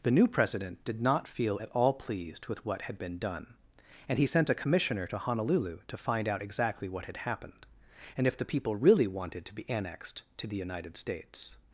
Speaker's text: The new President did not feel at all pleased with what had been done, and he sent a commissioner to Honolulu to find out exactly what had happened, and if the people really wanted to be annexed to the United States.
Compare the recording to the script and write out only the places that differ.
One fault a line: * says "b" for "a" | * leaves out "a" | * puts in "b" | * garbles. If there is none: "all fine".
all fine